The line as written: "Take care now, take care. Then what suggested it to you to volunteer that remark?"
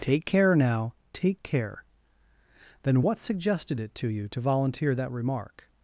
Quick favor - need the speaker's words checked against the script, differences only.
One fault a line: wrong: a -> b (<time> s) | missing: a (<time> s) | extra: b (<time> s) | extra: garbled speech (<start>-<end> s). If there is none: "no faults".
no faults